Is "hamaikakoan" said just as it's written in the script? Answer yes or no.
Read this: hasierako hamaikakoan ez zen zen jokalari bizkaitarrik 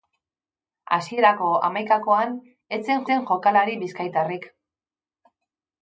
yes